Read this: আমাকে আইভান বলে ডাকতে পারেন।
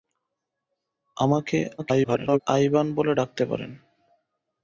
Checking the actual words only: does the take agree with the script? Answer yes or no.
no